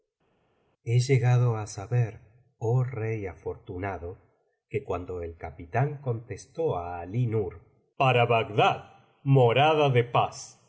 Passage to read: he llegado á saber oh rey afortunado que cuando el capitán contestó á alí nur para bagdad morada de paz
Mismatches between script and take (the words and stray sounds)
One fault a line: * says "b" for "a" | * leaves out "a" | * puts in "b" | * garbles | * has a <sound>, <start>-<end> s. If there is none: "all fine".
all fine